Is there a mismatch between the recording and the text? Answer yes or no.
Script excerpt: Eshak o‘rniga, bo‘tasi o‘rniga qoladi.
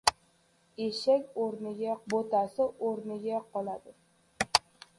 no